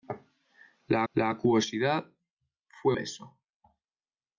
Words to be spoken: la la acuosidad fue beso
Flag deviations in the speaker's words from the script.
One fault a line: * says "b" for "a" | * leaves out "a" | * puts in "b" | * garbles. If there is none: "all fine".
all fine